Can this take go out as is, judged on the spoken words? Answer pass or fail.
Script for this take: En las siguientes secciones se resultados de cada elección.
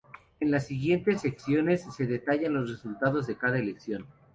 fail